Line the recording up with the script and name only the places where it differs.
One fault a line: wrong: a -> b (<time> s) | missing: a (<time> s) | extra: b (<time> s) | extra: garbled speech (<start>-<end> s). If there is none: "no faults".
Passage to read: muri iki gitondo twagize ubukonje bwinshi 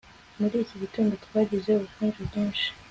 no faults